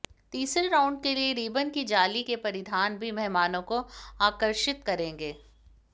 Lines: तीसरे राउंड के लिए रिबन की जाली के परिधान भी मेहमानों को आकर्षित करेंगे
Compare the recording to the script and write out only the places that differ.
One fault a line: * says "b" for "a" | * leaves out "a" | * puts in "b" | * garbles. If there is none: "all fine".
all fine